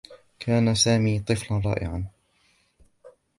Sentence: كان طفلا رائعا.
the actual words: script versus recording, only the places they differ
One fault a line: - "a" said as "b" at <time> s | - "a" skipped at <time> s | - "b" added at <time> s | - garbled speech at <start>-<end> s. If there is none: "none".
- "سامي" added at 0.8 s